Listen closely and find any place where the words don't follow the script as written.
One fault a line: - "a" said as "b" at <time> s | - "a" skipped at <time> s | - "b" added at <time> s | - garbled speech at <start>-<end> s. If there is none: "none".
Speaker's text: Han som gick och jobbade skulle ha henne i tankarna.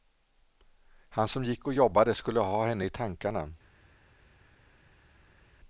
none